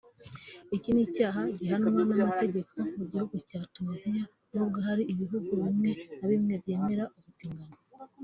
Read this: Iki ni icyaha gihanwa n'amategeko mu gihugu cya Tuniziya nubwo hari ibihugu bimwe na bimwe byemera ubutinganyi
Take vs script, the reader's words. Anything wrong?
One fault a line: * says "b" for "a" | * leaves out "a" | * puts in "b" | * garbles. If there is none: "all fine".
all fine